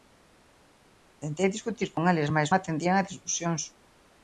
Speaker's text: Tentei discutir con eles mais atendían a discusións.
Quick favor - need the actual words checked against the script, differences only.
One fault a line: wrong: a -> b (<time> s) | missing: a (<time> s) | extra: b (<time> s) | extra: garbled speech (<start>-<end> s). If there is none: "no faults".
no faults